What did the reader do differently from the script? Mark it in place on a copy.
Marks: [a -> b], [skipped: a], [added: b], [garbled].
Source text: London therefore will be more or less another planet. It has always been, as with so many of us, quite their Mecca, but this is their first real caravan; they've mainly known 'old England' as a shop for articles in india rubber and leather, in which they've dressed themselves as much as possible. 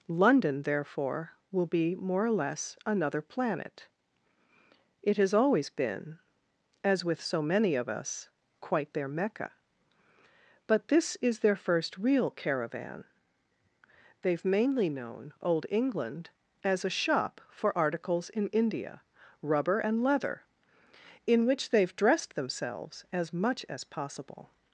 London therefore will be more or less another planet. It has always been, as with so many of us, quite their Mecca, but this is their first real caravan; they've mainly known 'old England' as a shop for articles in india rubber and leather, in which they've dressed themselves as much as possible.